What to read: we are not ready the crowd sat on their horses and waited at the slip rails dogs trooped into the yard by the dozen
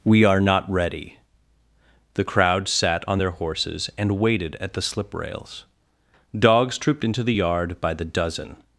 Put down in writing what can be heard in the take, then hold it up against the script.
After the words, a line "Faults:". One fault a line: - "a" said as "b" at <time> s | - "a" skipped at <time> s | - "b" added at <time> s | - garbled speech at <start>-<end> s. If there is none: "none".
we are not ready the crowd sat on their horses and waited at the slip rails dogs trooped into the yard by the dozen
Faults:
none